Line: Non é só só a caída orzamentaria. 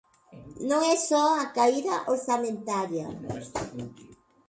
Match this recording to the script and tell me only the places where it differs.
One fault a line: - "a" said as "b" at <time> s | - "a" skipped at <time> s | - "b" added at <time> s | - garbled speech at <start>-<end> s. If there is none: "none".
- "só" skipped at 1.2 s